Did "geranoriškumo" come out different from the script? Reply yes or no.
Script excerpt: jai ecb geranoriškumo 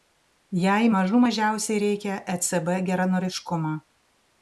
no